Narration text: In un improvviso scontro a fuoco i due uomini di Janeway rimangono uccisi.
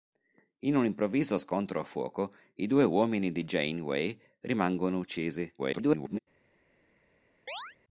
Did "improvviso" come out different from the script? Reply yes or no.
no